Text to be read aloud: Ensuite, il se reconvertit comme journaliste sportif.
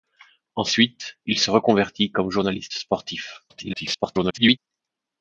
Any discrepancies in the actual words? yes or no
yes